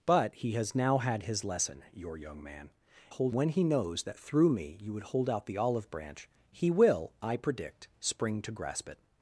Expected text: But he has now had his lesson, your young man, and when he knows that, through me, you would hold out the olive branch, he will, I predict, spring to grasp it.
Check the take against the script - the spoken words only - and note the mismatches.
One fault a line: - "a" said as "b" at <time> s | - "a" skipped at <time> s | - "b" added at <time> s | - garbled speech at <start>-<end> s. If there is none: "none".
- "and" said as "hold" at 3.1 s